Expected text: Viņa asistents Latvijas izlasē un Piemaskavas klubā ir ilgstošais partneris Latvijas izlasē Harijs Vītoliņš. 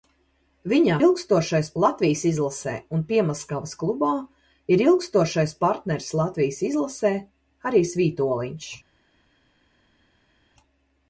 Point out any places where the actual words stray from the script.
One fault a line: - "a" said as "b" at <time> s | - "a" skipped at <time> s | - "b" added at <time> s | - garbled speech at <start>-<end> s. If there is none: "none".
- "asistents" said as "ilgstošais" at 1.0 s